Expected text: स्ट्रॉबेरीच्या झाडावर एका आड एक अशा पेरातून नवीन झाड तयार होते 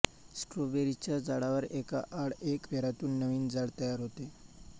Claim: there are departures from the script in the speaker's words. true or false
true